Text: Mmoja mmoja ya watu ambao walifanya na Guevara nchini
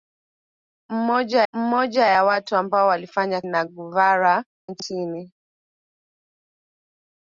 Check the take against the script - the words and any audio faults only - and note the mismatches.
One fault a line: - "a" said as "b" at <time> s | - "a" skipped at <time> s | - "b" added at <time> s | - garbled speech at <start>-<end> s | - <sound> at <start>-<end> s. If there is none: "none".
none